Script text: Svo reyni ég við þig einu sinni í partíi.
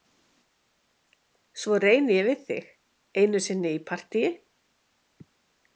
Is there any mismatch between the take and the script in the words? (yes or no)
no